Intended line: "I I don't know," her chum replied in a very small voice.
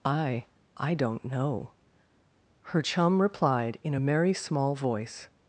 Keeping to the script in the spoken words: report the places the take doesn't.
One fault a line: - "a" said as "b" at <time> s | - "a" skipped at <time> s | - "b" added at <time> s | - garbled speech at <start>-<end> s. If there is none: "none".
- "very" said as "merry" at 4.0 s